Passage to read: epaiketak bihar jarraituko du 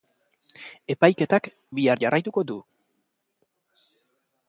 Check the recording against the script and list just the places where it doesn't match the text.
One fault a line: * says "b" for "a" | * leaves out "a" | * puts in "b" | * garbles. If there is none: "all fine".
all fine